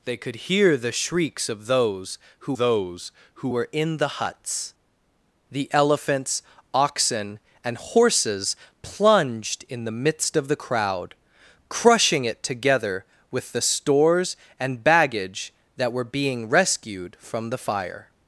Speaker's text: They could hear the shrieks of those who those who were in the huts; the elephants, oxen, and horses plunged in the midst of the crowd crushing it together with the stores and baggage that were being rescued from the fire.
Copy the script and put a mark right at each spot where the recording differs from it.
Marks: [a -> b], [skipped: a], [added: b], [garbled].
They could hear the shrieks of those who those who were in the huts; the elephants, oxen, and horses plunged in the midst of the crowd crushing it together with the stores and baggage that were being rescued from the fire.